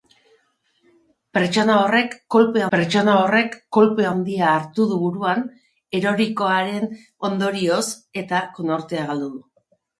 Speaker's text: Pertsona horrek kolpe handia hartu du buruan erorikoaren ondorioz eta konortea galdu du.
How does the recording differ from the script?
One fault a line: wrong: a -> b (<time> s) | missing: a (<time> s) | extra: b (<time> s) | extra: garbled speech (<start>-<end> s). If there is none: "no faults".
extra: pertsona horrek kolpe (2.7 s)